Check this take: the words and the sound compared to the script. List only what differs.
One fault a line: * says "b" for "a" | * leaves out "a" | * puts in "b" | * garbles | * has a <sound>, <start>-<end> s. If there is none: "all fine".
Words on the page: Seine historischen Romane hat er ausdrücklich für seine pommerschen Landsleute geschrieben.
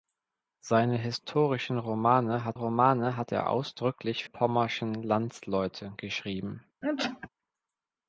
* puts in "Romane hat"
* leaves out "für seine"
* has a sneeze, 6.8-7.3 s